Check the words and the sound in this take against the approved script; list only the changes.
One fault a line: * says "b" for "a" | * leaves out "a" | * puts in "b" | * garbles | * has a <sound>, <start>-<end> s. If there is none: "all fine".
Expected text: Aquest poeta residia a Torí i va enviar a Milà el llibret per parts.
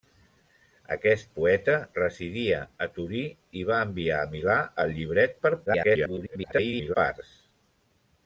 * garbles